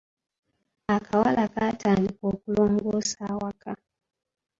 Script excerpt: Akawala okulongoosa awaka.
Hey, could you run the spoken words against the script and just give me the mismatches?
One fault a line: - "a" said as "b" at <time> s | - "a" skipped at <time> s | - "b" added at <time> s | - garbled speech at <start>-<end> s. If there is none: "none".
- "kaatandika" added at 1.5 s